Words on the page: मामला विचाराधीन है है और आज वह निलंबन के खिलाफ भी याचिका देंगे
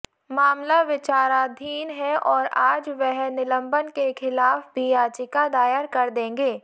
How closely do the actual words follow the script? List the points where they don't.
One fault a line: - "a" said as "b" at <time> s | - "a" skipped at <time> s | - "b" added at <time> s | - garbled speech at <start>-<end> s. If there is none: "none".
- "है" skipped at 2.1 s
- "दायर कर" added at 5.5 s